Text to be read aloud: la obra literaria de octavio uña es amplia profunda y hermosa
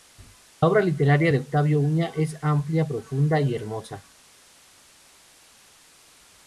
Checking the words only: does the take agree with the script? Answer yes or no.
yes